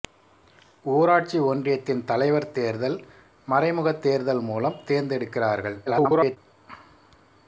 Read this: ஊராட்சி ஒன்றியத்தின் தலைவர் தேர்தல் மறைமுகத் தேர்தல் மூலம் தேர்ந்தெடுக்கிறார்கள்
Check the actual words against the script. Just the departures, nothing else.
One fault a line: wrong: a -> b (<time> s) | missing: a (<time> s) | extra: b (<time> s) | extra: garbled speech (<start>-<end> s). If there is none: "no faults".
extra: garbled speech (5.9-6.4 s)